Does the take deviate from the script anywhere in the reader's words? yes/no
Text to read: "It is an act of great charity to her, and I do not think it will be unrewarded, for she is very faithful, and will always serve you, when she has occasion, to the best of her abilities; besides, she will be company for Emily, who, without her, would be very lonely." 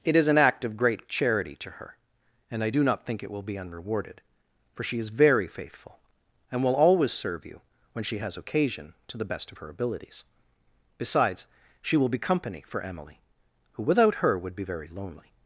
no